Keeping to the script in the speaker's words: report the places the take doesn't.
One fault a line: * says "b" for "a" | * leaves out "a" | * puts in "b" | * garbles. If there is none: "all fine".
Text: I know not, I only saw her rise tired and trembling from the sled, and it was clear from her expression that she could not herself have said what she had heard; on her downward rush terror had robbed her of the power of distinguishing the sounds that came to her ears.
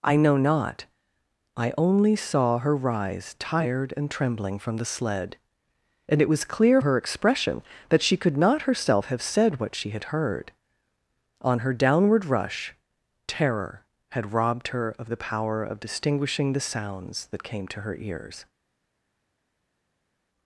* leaves out "from"